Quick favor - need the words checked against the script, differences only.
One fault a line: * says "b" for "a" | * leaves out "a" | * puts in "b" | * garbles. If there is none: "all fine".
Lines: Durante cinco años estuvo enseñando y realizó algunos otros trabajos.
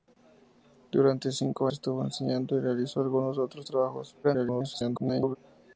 * leaves out "años"
* garbles